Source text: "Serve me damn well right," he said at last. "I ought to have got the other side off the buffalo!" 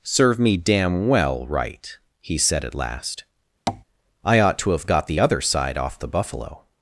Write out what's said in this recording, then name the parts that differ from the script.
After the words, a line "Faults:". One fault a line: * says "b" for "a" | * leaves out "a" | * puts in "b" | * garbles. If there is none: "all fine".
"Serve me damn well right," he said at last. "I ought to have got the other side off the buffalo!"
Faults:
all fine